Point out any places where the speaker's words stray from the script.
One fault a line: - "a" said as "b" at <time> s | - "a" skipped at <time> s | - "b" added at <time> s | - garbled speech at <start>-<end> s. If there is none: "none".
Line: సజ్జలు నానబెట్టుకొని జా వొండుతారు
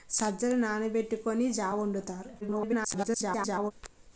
- garbled speech at 2.4-3.7 s